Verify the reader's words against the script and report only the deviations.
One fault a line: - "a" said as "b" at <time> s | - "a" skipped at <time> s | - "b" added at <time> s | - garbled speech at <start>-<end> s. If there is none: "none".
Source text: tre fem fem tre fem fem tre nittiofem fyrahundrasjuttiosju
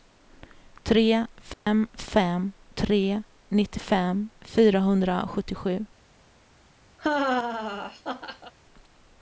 - "fem fem tre" skipped at 3.2 s